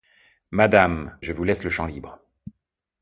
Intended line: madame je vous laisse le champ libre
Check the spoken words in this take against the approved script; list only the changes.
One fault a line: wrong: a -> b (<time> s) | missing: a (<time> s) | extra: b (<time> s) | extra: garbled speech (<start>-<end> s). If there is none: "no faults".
no faults